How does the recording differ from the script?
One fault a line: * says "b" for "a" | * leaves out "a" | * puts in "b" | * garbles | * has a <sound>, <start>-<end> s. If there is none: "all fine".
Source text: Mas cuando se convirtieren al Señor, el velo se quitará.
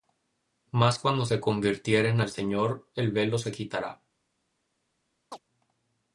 * has a chirp, 5.3-5.4 s